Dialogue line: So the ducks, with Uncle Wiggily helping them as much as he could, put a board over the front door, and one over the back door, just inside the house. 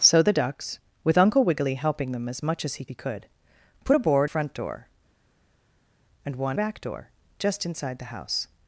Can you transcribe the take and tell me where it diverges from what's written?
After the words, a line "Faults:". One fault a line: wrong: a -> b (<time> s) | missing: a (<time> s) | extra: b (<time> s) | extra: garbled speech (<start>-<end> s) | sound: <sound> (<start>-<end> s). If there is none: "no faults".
So the ducks, with Uncle Wiggily helping them as much as he he could, put a board front door, and one back door, just inside the house.
Faults:
extra: he (2.8 s)
missing: over the (4.3 s)
missing: over the (6.6 s)